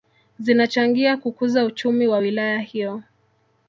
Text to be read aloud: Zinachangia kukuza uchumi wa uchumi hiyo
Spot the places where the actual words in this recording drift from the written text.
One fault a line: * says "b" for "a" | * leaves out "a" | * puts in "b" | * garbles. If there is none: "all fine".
* says "wilaya" for "uchumi"